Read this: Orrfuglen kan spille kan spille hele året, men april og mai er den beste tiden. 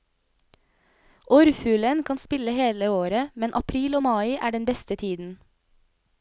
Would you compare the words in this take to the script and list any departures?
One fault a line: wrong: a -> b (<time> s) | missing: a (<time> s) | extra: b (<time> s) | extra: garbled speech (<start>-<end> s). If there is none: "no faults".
missing: kan spille (2.5 s)